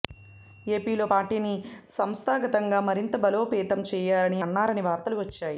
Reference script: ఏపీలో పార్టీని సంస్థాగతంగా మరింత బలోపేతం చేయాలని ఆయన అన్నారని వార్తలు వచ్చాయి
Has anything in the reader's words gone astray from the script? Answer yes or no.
yes